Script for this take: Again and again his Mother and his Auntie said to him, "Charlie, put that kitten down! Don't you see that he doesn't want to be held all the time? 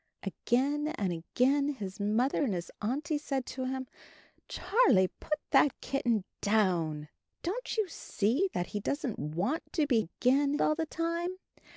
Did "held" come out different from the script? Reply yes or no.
yes